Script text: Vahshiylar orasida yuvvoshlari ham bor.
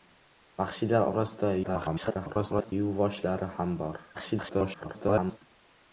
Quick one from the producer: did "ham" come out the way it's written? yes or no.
yes